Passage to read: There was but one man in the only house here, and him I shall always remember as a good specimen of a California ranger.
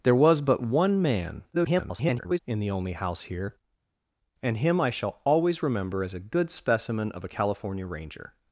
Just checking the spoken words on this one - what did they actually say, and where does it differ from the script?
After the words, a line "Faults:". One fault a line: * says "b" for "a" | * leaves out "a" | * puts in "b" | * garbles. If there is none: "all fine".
There was but one man [garbled] in the only house here, and him I shall always remember as a good specimen of a California ranger.
Faults:
* garbles